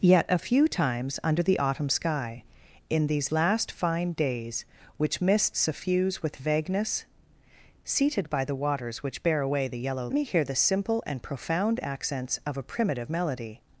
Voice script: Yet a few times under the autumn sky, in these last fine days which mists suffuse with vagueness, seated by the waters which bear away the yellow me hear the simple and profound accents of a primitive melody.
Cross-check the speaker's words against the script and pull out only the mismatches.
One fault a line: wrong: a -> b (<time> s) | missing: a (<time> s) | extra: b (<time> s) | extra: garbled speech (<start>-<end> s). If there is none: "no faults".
no faults